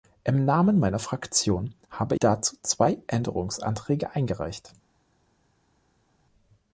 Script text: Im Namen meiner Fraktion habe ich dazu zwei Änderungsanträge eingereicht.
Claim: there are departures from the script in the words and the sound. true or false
true